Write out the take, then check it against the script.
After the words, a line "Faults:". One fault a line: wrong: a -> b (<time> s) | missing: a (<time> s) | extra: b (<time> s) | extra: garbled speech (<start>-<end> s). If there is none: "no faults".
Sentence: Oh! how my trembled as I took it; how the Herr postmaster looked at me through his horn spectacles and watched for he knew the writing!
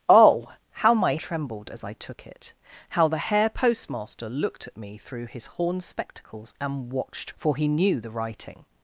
Oh! how my trembled as I took it; how the Herr postmaster looked at me through his horn spectacles and watched for he knew the writing!
Faults:
no faults